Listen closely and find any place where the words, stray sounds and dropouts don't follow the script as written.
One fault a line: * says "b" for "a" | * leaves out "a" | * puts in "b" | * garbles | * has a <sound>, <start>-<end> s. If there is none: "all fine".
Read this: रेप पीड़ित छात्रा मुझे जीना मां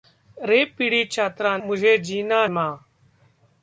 all fine